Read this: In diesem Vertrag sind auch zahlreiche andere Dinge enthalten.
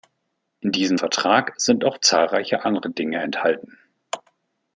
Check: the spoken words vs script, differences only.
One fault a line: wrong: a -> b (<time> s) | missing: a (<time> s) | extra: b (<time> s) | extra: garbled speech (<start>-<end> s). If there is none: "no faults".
no faults